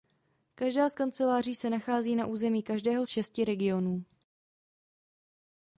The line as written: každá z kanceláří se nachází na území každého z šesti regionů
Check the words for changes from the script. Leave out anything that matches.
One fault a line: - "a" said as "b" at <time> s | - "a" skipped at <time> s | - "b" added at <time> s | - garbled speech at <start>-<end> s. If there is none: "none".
none